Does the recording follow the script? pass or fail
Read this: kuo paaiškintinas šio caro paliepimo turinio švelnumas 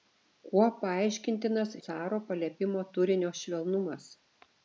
fail